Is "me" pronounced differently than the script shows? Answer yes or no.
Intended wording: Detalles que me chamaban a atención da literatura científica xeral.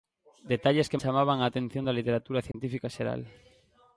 yes